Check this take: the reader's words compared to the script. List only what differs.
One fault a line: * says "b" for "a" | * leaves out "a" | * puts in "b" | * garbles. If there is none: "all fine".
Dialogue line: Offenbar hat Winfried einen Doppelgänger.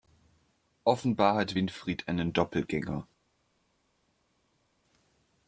all fine